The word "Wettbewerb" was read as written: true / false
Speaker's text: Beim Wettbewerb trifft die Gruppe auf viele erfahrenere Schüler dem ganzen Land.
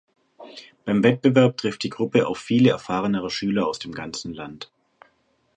true